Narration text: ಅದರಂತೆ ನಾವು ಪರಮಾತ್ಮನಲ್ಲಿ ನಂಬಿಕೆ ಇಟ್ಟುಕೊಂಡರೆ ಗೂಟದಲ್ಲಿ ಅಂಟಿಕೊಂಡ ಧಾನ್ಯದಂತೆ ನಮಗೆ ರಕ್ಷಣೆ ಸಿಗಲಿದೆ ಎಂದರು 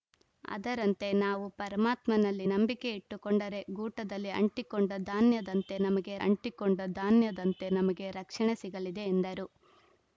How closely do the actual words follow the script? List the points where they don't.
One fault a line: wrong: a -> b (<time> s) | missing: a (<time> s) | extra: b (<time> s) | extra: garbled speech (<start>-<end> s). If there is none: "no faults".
extra: ಅಂಟಿಕೊಂಡ ಧಾನ್ಯದಂತೆ ನಮಗೆ (6.2 s)